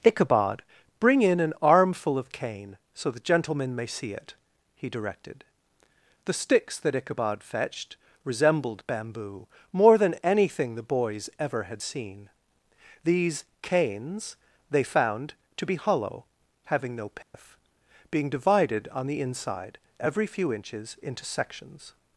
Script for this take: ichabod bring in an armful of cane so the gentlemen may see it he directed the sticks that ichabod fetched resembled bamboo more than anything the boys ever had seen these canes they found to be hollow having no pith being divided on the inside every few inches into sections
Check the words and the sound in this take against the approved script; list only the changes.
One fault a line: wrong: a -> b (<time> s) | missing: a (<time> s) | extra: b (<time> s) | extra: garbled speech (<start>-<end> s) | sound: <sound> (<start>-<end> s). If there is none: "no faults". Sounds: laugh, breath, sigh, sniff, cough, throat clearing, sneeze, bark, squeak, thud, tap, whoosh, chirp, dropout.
sound: dropout (17.2-17.3 s)